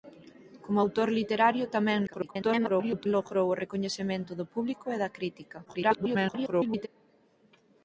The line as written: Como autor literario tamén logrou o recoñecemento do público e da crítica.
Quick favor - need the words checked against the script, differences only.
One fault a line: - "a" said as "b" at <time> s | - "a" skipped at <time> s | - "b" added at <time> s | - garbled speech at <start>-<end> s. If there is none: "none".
- garbled speech at 2.1-3.1 s
- garbled speech at 5.7-6.9 s